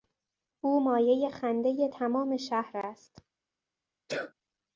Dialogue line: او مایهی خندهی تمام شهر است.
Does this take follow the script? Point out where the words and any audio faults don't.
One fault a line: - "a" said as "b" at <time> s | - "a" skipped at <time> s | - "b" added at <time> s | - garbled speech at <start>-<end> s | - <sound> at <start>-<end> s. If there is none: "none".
- sneeze at 4.1-4.3 s